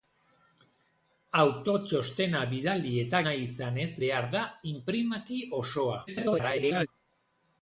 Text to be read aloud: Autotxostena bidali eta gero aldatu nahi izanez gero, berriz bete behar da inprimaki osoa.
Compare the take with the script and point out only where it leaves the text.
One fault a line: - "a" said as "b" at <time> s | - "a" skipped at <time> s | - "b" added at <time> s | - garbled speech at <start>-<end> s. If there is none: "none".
- "gero aldatu" skipped at 3.2 s
- "gero berriz bete" skipped at 3.9 s
- garbled speech at 6.1-6.9 s